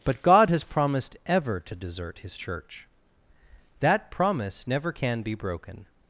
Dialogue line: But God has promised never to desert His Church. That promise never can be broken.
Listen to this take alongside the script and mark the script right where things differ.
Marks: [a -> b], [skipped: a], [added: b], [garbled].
But God has promised [never -> ever] to desert His Church. That promise never can be broken.